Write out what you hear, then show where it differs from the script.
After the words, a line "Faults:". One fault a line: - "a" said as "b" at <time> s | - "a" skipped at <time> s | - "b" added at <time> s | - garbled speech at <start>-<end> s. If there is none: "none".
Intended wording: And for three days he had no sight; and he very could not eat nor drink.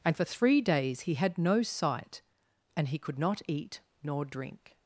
And for three days he had no sight; and he could not eat nor drink.
Faults:
- "very" skipped at 3.0 s